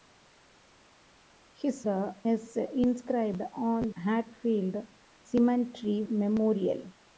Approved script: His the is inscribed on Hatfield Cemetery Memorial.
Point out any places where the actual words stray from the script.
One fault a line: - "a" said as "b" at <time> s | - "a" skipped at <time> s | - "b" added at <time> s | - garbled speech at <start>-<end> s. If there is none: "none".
none